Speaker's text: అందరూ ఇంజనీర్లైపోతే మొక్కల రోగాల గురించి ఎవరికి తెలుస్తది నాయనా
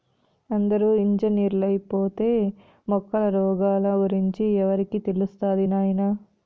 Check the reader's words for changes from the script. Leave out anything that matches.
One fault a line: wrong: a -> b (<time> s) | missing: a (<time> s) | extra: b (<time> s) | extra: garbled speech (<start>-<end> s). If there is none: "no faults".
no faults